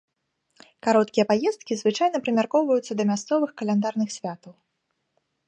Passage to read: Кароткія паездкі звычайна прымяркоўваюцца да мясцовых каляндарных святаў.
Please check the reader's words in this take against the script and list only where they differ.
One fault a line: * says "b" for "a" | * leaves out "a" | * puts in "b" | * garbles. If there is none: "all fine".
all fine